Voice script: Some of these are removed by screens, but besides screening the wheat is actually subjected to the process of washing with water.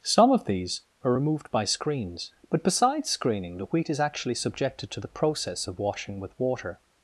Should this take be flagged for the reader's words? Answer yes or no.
no